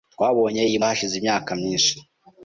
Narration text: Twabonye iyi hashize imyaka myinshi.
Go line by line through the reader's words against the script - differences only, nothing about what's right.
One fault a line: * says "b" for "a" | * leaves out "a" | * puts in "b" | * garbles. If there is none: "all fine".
all fine